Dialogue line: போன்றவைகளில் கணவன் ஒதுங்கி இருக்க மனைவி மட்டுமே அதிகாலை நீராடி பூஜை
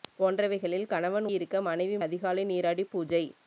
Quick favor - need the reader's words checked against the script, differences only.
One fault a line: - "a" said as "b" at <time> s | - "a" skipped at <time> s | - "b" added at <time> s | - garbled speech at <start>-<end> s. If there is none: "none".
- "ஒதுங்கி" skipped at 1.3 s
- "மட்டுமே" skipped at 2.0 s